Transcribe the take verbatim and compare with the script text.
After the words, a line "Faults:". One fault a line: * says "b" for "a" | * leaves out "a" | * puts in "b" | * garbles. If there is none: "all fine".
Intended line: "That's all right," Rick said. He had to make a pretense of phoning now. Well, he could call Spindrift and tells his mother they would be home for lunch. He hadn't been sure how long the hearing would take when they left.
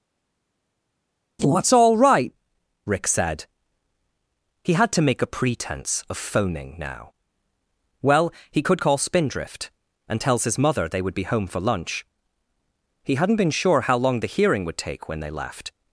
"That's all right," Rick said. He had to make a pretense of phoning now. Well, he could call Spindrift and tells his mother they would be home for lunch. He hadn't been sure how long the hearing would take when they left.
Faults:
all fine